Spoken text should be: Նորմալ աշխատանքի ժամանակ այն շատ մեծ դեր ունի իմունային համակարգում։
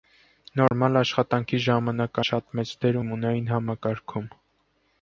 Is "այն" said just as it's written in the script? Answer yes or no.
no